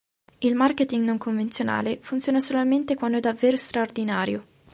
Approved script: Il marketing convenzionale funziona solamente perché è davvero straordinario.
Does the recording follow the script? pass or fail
fail